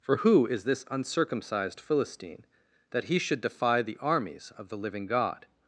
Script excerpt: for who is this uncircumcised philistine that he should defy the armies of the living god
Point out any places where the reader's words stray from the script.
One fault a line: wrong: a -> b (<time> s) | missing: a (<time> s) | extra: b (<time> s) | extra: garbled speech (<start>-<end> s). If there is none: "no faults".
no faults